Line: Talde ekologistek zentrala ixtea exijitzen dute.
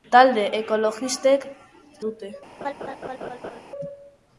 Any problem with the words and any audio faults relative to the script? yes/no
yes